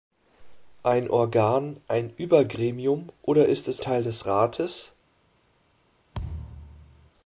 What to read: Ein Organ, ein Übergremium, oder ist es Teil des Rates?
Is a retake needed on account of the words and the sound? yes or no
yes